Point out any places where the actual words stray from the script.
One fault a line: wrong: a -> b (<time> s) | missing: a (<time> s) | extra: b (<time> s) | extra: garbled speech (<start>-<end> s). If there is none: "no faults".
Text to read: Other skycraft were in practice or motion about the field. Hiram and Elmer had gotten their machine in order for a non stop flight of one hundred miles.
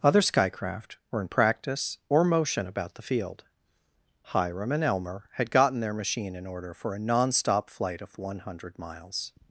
no faults